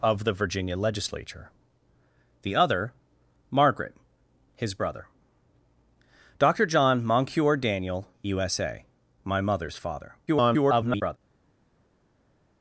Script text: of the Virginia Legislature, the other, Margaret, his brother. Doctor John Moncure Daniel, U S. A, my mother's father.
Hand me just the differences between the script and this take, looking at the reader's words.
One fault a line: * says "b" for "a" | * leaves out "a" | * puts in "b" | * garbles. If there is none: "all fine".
* garbles